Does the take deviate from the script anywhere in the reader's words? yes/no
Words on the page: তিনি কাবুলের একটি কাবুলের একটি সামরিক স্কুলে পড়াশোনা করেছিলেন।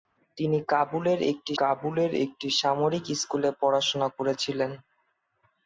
no